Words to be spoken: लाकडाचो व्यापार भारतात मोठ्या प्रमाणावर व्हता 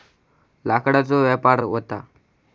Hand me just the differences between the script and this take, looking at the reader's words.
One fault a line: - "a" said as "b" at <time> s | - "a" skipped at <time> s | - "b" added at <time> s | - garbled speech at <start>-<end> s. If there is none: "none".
- "भारतात मोठ्या प्रमाणावर" skipped at 1.6 s